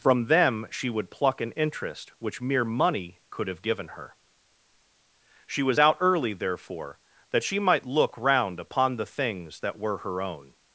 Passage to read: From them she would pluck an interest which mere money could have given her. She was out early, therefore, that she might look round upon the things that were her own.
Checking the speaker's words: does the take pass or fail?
pass